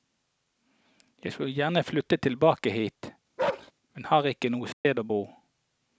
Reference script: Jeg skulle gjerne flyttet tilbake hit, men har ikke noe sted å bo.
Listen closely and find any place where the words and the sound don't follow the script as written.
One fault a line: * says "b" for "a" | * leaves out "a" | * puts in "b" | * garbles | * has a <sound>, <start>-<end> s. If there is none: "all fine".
* has a bark, 3.4-3.7 s
* has a dropout, 4.7-4.9 s